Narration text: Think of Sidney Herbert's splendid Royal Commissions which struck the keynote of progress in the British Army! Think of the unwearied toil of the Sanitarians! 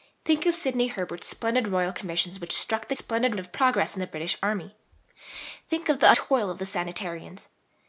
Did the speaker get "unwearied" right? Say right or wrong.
wrong